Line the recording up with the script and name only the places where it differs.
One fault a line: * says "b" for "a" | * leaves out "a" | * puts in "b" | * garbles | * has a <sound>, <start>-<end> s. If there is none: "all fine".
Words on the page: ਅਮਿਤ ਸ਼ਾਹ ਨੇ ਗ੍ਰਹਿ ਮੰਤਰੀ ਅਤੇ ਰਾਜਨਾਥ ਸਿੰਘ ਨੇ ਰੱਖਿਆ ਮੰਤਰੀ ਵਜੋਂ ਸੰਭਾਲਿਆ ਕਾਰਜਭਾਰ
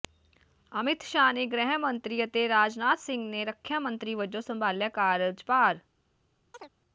* has a chirp, 6.5-6.7 s